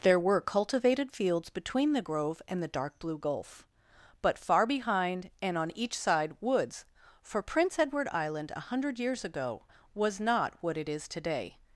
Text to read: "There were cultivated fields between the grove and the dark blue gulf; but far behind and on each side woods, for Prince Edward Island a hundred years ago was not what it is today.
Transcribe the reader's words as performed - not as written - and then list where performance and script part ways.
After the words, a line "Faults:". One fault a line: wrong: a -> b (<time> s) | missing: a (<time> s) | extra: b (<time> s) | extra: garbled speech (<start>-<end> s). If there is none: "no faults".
"There were cultivated fields between the grove and the dark blue gulf; but far behind and on each side woods, for Prince Edward Island a hundred years ago was not what it is today.
Faults:
no faults